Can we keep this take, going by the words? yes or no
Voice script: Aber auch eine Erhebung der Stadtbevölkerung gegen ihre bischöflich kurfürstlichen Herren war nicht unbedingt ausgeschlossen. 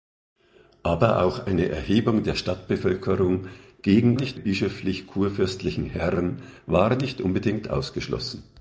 no